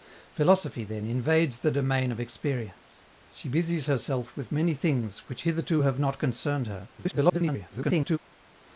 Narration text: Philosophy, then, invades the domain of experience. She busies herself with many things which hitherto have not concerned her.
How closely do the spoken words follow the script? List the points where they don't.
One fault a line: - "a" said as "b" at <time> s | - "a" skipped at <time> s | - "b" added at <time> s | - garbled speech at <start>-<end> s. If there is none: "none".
- garbled speech at 7.0-8.2 s